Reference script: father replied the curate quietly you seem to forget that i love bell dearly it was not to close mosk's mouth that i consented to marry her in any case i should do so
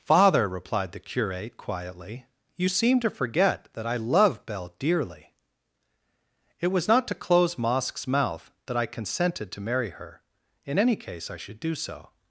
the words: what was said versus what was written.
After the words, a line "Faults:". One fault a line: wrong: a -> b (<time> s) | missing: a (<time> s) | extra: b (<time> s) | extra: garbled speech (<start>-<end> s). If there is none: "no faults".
father replied the curate quietly you seem to forget that i love bell dearly it was not to close mosk's mouth that i consented to marry her in any case i should do so
Faults:
no faults